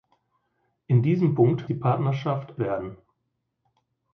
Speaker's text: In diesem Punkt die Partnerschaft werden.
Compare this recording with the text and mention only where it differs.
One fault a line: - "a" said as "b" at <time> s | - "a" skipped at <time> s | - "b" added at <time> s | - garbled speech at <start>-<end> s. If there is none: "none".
none